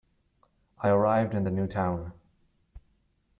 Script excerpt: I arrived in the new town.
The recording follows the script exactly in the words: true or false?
true